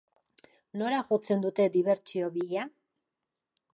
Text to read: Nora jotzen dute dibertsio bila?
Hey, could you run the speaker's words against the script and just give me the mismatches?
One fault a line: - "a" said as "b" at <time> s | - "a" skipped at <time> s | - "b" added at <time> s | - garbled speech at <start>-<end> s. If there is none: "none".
none